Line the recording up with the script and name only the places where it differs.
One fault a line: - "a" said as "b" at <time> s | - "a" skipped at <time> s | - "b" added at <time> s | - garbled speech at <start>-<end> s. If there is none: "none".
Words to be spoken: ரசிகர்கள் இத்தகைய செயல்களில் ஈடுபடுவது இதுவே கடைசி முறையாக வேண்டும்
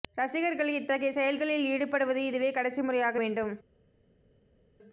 none